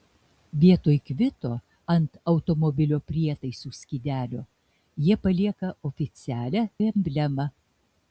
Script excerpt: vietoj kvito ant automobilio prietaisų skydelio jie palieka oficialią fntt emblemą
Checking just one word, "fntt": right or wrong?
wrong